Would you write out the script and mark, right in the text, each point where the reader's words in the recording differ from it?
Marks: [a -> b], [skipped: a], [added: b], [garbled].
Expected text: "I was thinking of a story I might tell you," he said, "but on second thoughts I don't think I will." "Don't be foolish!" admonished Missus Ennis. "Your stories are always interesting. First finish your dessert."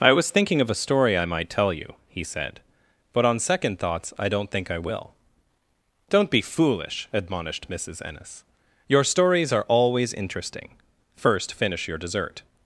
"I was thinking of a story I might tell you," he said, "but on second thoughts I don't think I will." "Don't be foolish!" admonished Missus Ennis. "Your stories are always interesting. First finish your dessert."